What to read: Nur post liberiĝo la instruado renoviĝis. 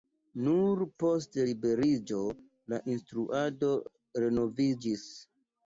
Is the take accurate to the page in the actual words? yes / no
yes